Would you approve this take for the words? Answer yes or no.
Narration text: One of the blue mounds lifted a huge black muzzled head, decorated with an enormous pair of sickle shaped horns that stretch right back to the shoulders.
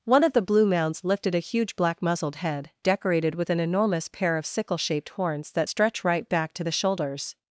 yes